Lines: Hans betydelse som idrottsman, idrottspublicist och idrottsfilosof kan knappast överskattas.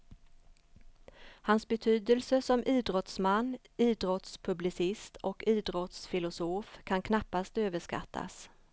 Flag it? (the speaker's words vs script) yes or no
no